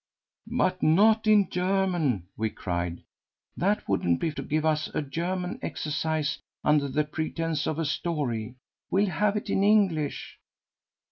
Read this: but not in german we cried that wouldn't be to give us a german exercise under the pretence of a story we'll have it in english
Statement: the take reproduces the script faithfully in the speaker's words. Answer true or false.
true